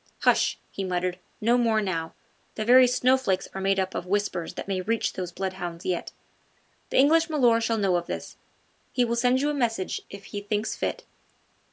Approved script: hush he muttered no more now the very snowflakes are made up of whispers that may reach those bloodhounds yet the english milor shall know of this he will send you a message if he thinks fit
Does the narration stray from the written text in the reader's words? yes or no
no